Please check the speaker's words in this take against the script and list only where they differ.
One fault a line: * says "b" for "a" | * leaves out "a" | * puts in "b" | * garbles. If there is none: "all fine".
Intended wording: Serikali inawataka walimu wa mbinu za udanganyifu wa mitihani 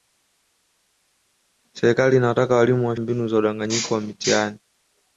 all fine